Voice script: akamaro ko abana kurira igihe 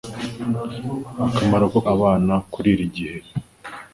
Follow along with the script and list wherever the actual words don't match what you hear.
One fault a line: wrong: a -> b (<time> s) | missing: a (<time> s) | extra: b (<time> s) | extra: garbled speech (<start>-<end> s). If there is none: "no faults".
no faults